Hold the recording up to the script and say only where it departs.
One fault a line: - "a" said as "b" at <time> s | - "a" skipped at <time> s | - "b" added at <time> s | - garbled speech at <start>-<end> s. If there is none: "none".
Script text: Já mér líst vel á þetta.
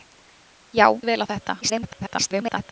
- "mér líst" skipped at 0.9 s
- garbled speech at 1.6-2.7 s